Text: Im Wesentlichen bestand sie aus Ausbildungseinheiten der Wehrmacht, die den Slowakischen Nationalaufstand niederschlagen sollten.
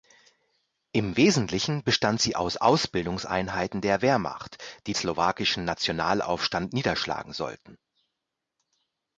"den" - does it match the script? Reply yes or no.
no